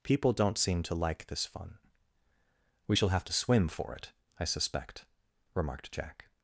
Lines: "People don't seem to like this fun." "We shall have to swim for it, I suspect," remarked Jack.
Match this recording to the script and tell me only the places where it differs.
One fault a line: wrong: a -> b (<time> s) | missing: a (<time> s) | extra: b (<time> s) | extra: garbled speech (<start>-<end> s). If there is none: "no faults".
no faults